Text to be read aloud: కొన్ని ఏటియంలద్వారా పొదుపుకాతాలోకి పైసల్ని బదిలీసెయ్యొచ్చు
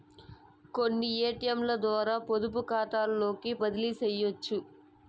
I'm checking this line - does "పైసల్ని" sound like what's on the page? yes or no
no